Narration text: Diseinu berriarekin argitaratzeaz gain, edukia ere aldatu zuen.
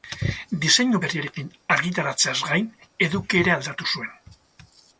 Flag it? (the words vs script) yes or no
no